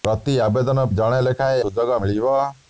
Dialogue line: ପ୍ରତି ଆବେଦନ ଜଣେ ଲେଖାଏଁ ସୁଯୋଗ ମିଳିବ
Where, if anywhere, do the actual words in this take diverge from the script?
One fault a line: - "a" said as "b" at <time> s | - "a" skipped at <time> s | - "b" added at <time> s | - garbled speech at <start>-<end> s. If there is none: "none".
none